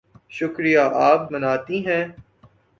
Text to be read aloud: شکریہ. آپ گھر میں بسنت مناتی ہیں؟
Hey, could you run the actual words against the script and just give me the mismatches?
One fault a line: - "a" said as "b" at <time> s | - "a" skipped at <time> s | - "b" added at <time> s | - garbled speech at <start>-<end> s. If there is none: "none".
- "گھر میں بسنت" skipped at 1.3 s